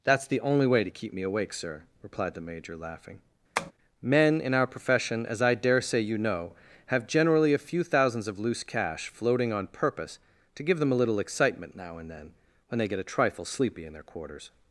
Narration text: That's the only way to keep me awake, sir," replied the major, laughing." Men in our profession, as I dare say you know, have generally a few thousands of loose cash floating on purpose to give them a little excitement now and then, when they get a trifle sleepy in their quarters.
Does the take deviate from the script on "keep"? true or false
false